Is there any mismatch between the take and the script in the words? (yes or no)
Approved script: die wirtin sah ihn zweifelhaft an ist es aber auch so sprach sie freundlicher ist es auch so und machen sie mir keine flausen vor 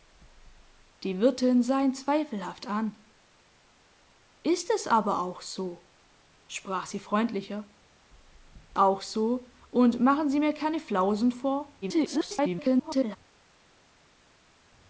yes